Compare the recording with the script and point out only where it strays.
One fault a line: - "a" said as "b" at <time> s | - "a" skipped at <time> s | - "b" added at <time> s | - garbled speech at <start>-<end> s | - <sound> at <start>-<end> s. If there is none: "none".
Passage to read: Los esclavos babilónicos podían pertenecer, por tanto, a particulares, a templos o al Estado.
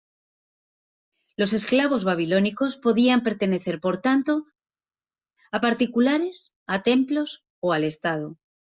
none